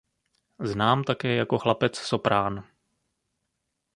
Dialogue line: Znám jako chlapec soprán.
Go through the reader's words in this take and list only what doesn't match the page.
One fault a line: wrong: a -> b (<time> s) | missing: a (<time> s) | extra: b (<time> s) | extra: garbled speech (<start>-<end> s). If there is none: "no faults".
extra: také (1.0 s)